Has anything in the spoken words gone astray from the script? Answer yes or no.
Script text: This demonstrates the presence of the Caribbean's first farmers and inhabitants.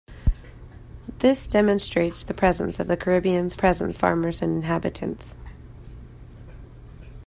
yes